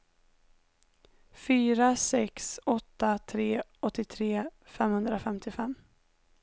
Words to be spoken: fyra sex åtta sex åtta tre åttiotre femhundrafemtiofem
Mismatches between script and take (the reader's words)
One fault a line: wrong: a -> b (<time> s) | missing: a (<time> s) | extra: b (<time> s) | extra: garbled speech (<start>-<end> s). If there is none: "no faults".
missing: sex åtta (3.2 s)